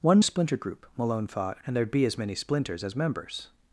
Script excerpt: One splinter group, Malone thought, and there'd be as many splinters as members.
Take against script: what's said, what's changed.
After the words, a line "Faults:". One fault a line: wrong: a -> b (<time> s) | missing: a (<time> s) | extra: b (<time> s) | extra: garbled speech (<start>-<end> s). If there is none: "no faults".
One splinter group, Malone thought, and there'd be as many splinters as members.
Faults:
no faults